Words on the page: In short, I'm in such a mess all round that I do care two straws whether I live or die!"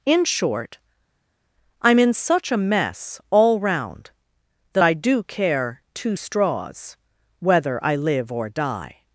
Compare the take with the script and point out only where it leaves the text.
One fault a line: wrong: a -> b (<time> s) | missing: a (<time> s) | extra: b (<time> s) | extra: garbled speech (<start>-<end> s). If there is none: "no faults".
no faults